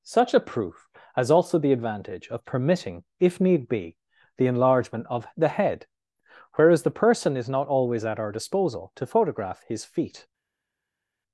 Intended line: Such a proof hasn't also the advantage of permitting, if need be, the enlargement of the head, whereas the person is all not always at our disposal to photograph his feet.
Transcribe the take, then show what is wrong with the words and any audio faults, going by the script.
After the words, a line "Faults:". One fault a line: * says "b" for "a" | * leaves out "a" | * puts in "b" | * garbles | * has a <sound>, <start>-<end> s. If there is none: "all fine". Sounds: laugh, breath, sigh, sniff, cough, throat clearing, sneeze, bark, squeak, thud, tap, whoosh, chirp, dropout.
Such a proof has also the advantage of permitting, if need be, the enlargement of the head, whereas the person is not always at our disposal to photograph his feet.
Faults:
* says "has" for "hasn't"
* leaves out "all"